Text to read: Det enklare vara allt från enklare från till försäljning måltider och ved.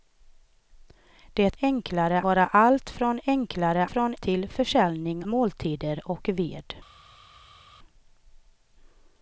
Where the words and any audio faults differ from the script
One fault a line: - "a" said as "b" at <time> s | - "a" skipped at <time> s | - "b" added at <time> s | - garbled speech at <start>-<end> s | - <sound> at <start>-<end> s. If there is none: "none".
none